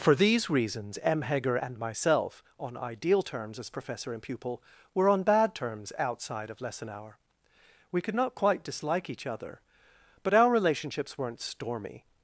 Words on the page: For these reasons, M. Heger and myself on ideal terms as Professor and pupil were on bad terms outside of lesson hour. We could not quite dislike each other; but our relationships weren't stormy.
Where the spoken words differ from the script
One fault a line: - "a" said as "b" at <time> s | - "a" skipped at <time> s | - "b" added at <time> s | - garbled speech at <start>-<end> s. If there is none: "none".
none